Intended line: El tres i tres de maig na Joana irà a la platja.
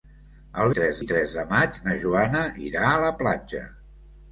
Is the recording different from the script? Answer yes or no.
no